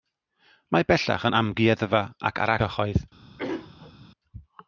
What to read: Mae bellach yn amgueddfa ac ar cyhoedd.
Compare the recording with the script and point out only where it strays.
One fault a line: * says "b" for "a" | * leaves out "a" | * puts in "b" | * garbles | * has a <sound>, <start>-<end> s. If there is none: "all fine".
* has a throat clearing, 3.4-3.9 s